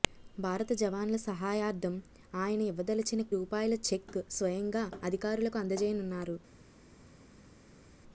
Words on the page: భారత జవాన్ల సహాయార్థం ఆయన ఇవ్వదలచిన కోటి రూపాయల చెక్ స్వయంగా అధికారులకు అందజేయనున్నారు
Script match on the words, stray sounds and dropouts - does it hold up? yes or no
no